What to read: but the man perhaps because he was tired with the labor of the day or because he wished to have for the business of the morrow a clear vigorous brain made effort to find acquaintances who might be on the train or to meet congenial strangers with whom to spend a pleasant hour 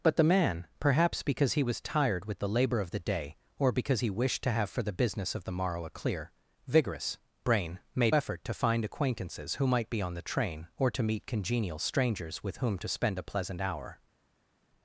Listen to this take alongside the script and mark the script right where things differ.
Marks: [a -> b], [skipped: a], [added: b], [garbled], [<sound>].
but the man perhaps because he was tired with the labor of the day or because he wished to have for the business of the morrow a clear vigorous brain made effort to find acquaintances who might be on the train or to meet congenial strangers with whom to spend a pleasant hour